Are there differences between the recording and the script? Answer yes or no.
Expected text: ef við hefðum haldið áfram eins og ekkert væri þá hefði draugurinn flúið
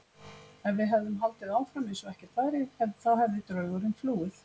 no